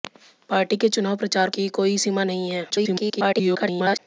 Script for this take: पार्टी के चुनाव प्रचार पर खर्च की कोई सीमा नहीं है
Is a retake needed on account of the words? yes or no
yes